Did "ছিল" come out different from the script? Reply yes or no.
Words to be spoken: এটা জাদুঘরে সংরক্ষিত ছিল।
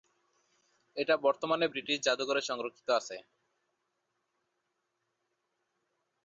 yes